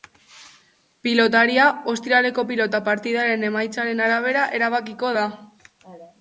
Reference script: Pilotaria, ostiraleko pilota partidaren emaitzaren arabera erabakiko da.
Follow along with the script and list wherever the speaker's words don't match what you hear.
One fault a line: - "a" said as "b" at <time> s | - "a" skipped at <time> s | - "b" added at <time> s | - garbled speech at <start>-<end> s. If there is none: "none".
none